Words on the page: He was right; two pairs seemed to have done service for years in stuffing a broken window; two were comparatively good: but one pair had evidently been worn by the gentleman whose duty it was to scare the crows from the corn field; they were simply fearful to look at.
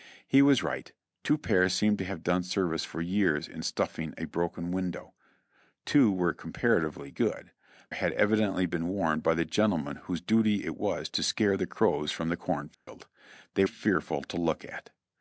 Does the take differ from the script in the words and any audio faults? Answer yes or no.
yes